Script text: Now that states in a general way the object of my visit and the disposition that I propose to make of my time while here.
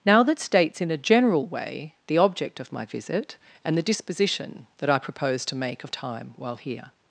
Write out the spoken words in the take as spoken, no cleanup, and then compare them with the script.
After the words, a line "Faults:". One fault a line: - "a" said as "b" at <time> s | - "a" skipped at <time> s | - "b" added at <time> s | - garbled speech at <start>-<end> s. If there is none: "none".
Now that states in a general way the object of my visit and the disposition that I propose to make of time while here.
Faults:
- "my" skipped at 5.9 s